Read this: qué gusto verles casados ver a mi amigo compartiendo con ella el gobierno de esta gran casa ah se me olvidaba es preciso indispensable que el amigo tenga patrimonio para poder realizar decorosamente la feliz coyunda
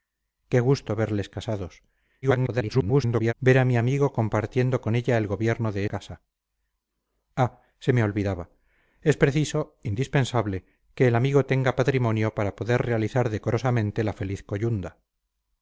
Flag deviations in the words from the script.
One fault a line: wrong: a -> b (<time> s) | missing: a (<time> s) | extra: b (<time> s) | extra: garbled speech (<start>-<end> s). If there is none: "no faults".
extra: garbled speech (2.2-3.3 s)
missing: esta gran (5.8 s)